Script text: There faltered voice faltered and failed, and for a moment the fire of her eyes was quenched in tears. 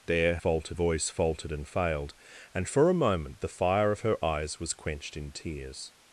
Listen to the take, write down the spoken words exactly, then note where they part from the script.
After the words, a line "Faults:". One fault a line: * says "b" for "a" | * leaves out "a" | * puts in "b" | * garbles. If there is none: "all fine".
There faltered voice faltered and failed, and for a moment the fire of her eyes was quenched in tears.
Faults:
all fine